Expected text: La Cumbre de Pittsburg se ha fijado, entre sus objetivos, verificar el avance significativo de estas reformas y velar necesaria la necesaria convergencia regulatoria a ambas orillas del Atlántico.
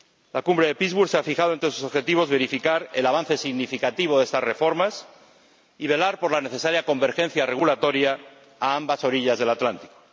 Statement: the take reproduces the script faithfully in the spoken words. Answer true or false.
false